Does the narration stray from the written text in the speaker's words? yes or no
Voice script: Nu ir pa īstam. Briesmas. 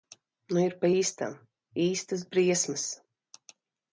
yes